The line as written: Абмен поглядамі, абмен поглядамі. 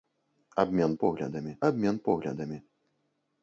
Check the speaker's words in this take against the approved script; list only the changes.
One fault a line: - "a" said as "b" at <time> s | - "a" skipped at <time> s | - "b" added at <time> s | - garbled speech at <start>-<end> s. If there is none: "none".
none